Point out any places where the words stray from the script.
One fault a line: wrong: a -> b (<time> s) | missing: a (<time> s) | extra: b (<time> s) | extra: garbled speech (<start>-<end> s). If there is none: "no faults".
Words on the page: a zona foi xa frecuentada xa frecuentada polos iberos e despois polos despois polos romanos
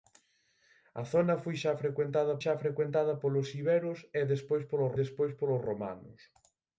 no faults